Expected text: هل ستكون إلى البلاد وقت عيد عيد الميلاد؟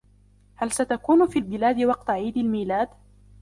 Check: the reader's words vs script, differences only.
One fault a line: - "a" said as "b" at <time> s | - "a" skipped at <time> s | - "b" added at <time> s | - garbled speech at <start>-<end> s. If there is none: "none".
- "إلى" said as "في" at 1.3 s
- "عيد" skipped at 2.4 s